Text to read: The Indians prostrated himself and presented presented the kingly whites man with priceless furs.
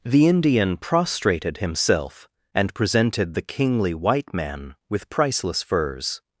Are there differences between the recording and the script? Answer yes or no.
yes